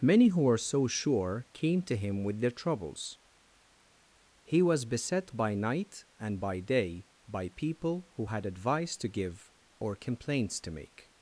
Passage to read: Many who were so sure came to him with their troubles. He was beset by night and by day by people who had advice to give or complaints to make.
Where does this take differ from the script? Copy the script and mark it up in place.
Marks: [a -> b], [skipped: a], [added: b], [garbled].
Many who were so sure came to him with their troubles. He was beset by night and by day by people who had advice to give or complaints to make.